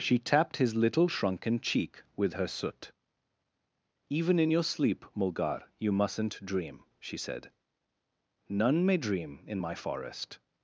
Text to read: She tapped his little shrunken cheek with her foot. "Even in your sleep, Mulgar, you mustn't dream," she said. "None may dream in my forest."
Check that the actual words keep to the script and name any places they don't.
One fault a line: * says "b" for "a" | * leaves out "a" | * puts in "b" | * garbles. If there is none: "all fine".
* says "soot" for "foot"